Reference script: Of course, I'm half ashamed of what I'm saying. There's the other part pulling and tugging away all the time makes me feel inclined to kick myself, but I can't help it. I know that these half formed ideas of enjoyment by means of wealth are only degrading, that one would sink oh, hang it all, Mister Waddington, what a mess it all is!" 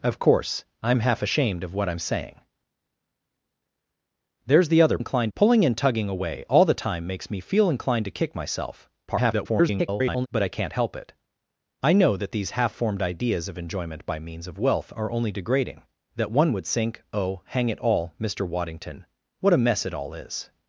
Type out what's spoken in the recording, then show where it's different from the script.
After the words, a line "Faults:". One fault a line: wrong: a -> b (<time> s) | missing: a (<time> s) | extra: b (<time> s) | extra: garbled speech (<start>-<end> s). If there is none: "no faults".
Of course, I'm half ashamed of what I'm saying. There's the other inclined pulling and tugging away all the time makes me feel inclined to kick myself, [garbled] but I can't help it. I know that these half formed ideas of enjoyment by means of wealth are only degrading, that one would sink oh, hang it all, Mister Waddington, what a mess it all is!"
Faults:
wrong: part -> inclined (5.0 s)
extra: garbled speech (9.1-10.3 s)